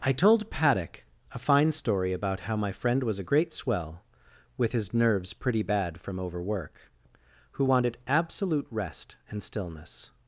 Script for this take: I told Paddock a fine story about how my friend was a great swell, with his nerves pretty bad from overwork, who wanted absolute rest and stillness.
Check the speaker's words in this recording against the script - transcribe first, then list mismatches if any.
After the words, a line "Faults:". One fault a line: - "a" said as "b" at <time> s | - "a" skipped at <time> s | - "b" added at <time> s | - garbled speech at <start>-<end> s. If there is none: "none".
I told Paddock a fine story about how my friend was a great swell, with his nerves pretty bad from overwork, who wanted absolute rest and stillness.
Faults:
none